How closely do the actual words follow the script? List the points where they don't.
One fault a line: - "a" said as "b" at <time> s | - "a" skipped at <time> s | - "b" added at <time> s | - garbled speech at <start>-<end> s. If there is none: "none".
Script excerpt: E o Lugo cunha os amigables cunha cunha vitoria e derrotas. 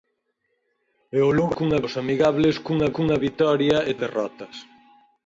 none